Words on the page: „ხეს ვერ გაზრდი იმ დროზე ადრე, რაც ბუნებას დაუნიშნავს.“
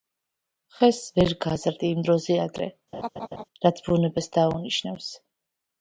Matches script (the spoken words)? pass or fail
pass